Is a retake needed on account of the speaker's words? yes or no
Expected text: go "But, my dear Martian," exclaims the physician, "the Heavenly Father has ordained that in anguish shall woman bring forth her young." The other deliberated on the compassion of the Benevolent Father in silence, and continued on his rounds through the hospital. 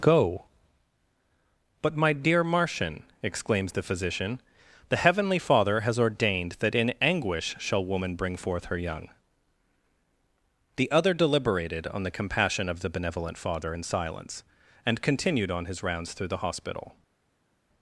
no